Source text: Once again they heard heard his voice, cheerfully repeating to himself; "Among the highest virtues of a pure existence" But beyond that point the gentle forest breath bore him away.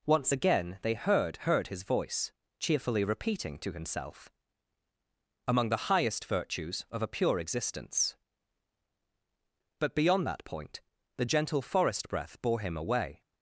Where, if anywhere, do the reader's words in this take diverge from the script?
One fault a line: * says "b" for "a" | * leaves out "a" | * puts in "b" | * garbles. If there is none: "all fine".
all fine